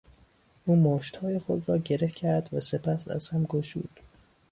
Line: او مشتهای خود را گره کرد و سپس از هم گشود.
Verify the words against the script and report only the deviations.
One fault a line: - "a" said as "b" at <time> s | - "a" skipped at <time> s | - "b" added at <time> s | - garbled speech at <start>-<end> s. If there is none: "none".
none